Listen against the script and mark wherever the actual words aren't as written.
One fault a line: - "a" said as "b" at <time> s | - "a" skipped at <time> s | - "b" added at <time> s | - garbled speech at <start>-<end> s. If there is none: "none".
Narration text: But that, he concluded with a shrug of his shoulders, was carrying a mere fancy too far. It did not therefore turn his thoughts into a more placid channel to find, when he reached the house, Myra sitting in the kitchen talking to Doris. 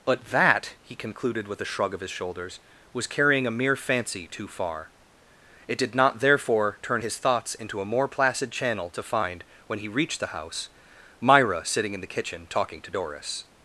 none